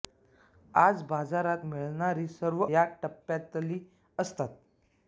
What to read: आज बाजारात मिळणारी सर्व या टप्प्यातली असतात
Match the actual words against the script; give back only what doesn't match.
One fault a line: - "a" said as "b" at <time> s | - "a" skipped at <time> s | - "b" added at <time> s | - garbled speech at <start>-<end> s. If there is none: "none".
none